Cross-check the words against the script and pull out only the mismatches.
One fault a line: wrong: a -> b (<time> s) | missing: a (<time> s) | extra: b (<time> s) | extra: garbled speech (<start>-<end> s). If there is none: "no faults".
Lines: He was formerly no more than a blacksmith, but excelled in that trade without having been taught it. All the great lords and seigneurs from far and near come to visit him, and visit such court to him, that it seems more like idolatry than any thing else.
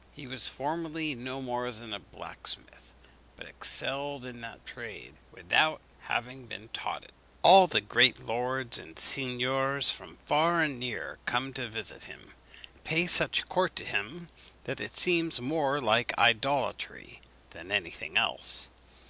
wrong: visit -> pay (12.8 s)